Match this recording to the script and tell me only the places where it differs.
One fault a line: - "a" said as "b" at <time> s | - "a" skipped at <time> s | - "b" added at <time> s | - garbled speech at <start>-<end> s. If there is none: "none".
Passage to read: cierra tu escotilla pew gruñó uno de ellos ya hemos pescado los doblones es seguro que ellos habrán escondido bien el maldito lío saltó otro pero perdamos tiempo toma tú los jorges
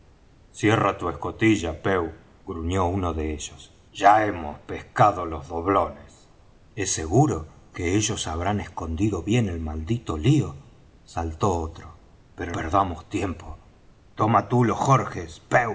none